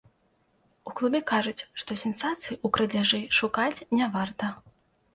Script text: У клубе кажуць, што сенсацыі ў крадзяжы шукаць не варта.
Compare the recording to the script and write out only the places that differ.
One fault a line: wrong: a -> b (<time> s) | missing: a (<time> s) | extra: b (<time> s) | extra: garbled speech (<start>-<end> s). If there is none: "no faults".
no faults